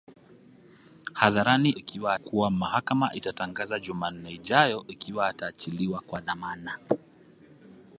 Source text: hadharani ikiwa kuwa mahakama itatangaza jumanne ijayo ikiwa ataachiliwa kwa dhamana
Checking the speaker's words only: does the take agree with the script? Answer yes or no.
yes